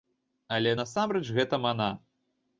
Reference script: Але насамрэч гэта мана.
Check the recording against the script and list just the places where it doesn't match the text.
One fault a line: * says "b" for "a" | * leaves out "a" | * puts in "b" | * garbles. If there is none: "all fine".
all fine